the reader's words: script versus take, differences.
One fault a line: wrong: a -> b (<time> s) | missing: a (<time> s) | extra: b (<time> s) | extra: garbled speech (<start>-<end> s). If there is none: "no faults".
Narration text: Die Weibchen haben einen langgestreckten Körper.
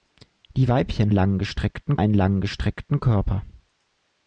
wrong: haben -> langgestreckten (1.1 s)